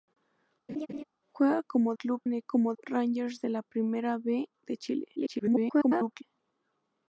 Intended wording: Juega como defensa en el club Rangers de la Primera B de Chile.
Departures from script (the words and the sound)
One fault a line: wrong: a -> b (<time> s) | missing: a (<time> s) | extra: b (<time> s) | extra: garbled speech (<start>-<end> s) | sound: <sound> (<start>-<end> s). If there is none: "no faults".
sound: laugh (0.7-1.0 s)
wrong: defensa -> club (1.9 s)
wrong: club -> como (2.4 s)
extra: garbled speech (5.2-6.2 s)